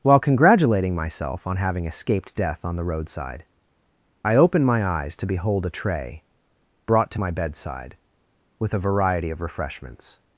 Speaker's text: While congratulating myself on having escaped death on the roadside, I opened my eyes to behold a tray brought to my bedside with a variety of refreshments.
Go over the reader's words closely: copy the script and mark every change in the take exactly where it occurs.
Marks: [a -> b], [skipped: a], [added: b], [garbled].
While congratulating myself on having escaped death on the roadside, I opened my eyes to behold a tray brought to my bedside with a variety of refreshments.